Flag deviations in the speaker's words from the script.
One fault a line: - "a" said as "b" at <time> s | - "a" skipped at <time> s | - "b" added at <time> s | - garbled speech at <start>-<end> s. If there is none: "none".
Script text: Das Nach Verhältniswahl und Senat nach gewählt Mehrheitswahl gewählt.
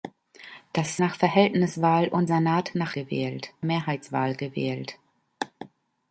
none